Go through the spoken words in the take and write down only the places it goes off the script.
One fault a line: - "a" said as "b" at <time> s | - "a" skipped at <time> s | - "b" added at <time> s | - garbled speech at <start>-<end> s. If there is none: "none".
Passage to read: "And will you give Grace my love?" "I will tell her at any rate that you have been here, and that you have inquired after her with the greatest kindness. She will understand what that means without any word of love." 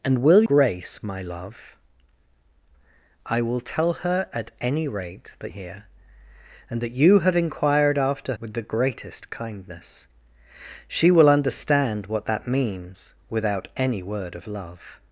- "you give" skipped at 0.4 s
- "you have been" skipped at 5.5 s
- "her" skipped at 8.3 s